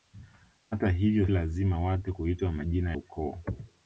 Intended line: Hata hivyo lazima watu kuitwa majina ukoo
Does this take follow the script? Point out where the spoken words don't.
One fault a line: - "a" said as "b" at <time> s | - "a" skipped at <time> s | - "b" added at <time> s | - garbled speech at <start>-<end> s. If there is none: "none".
none